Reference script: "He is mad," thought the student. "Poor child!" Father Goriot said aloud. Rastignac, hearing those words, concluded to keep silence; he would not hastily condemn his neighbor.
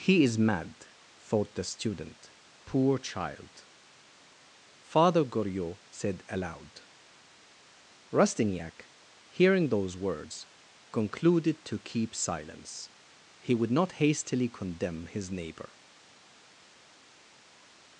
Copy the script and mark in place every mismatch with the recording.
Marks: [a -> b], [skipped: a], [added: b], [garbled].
"He is mad," thought the student. "Poor child!" Father Goriot said aloud. Rastignac, hearing those words, concluded to keep silence; he would not hastily condemn his neighbor.